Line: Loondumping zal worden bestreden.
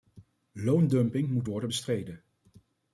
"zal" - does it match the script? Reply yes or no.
no